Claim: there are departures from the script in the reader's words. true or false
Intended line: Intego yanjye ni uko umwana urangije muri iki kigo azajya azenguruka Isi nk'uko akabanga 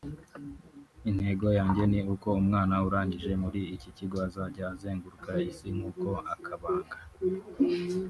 false